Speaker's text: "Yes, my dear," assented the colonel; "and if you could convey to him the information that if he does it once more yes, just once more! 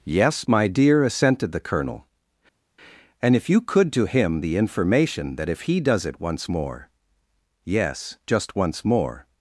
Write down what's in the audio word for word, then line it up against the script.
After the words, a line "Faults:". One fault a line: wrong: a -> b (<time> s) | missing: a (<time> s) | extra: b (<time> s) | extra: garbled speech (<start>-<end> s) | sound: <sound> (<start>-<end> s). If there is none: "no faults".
"Yes, my dear," assented the colonel; "and if you could to him the information that if he does it once more yes, just once more!
Faults:
missing: convey (3.9 s)